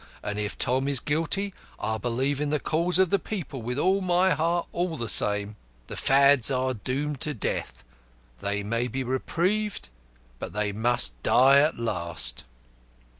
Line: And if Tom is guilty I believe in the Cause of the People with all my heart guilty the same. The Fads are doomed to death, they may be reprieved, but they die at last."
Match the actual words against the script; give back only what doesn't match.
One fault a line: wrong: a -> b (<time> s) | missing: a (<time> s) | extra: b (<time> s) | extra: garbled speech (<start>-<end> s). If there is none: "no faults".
wrong: guilty -> all (4.7 s)
extra: must (10.7 s)